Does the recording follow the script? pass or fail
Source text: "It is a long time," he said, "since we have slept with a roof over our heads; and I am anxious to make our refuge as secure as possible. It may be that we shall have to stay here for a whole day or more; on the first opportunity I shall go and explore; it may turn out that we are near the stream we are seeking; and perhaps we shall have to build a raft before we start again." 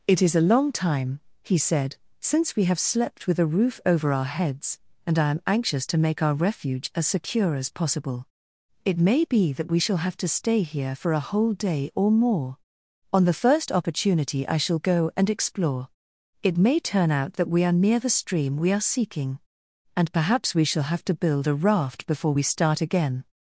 pass